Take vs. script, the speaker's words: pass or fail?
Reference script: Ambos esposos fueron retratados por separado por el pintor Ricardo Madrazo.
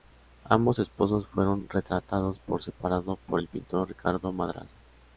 pass